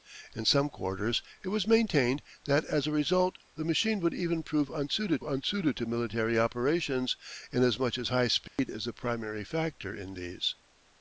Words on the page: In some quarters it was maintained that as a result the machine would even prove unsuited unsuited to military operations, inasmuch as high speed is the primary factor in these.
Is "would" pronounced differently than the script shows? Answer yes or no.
no